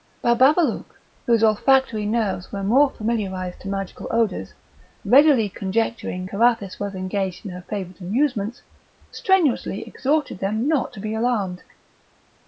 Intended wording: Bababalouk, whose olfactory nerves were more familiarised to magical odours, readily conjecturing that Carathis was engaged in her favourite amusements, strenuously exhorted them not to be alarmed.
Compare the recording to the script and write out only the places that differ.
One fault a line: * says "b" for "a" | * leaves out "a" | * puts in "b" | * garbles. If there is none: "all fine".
* leaves out "that"